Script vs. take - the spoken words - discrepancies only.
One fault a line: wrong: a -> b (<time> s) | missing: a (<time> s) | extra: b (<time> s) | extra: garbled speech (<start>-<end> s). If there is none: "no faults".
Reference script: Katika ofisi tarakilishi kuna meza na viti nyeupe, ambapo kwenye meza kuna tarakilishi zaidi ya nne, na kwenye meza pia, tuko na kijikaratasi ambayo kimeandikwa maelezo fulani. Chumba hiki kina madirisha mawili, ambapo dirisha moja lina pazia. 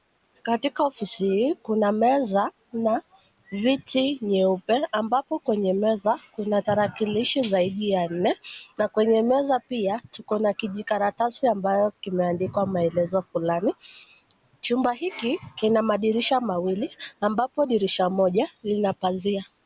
wrong: tarakilishi -> hii (1.2 s)